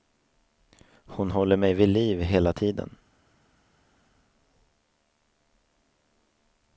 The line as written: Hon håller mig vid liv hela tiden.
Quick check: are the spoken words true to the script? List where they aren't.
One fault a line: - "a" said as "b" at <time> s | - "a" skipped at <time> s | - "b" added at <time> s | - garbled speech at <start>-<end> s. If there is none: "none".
none